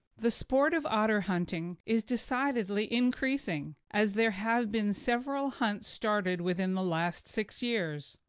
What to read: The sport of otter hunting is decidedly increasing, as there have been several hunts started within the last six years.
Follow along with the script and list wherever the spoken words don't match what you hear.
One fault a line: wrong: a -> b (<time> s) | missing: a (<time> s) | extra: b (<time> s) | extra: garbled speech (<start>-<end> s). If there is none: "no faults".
no faults